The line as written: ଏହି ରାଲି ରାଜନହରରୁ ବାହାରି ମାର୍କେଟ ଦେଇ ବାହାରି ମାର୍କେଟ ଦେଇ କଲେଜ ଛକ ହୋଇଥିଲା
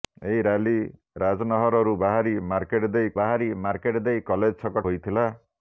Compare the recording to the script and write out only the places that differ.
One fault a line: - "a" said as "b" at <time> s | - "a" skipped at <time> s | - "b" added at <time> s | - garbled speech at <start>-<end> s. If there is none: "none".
none